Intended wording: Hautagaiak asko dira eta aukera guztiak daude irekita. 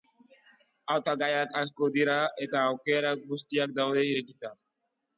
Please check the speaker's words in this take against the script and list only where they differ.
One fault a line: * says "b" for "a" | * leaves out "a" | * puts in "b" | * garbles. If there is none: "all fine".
all fine